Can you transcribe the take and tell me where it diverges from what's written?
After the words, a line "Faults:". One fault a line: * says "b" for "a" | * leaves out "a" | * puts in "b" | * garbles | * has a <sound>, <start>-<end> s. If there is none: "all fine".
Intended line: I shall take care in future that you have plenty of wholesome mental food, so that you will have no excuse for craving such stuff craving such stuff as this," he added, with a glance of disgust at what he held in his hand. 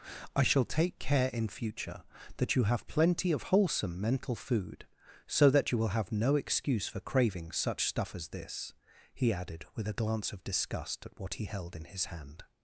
I shall take care in future that you have plenty of wholesome mental food, so that you will have no excuse for craving such stuff as this," he added, with a glance of disgust at what he held in his hand.
Faults:
* leaves out "craving such stuff"